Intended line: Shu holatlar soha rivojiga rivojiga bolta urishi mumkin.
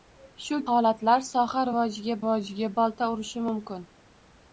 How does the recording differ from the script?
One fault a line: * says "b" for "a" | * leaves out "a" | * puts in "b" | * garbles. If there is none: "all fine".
all fine